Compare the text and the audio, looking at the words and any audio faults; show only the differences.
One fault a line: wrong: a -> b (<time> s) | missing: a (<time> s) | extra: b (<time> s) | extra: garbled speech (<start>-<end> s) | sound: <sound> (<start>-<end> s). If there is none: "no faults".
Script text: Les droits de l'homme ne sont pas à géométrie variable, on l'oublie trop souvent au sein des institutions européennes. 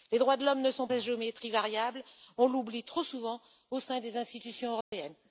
missing: pas (0.9 s)
sound: dropout (4.8-4.9 s)